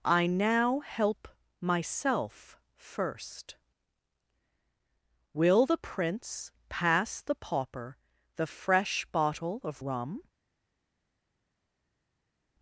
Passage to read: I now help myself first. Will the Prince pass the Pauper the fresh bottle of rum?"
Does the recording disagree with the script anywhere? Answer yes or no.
no